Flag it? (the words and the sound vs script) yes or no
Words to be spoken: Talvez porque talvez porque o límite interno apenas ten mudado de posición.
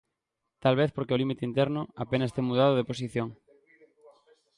yes